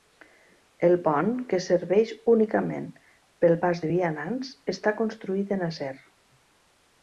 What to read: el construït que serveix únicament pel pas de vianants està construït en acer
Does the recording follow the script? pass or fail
fail